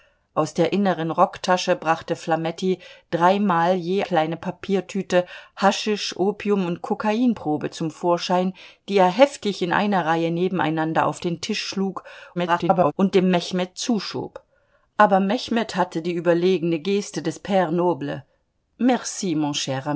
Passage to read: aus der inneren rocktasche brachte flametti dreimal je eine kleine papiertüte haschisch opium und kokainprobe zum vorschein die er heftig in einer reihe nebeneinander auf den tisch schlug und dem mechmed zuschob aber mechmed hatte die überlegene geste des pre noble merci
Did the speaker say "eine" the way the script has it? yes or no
no